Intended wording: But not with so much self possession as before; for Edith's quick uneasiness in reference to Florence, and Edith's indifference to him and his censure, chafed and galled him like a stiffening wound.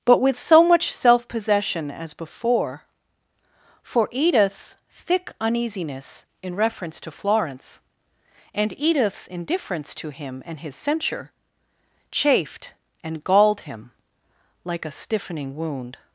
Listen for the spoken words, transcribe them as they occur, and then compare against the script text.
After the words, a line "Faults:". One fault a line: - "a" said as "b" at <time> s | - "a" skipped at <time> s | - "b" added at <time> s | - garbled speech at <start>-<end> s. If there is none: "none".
But with so much self possession as before; for Edith's thick uneasiness in reference to Florence, and Edith's indifference to him and his censure, chafed and galled him like a stiffening wound.
Faults:
- "not" skipped at 0.2 s
- "quick" said as "thick" at 4.9 s